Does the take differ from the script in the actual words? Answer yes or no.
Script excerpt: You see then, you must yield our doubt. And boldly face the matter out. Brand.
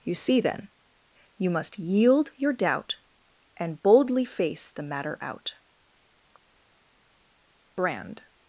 yes